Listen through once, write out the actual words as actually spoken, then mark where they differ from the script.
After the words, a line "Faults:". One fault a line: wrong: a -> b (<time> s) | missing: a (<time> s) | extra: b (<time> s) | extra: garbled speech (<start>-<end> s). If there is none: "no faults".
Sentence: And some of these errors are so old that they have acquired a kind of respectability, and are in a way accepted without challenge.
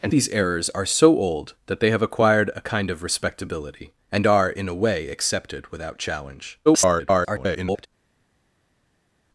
And these errors are so old that they have acquired a kind of respectability, and are in a way accepted without challenge. [garbled]
Faults:
missing: some of (0.1 s)
extra: garbled speech (6.7-7.9 s)